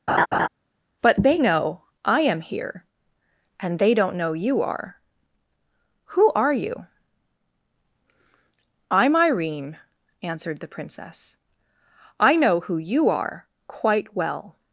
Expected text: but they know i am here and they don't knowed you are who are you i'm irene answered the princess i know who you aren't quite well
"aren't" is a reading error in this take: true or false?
true